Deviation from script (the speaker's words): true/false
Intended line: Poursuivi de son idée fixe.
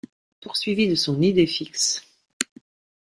false